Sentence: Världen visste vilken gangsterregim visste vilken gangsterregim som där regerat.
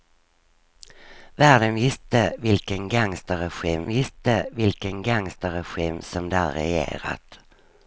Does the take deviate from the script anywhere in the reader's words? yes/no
no